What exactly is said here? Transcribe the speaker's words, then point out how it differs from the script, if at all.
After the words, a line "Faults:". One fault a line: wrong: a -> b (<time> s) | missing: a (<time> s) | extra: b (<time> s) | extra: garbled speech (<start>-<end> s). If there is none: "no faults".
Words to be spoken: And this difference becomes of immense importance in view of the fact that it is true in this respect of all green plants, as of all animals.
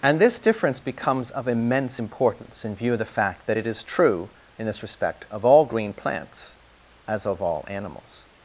And this difference becomes of immense importance in view of the fact that it is true in this respect of all green plants, as of all animals.
Faults:
no faults